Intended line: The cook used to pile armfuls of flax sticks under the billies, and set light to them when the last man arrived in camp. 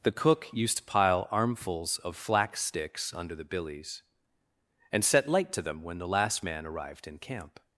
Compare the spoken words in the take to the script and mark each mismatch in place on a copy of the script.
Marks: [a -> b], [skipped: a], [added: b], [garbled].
The cook used to pile armfuls of flax sticks under the billies, and set light to them when the last man arrived in camp.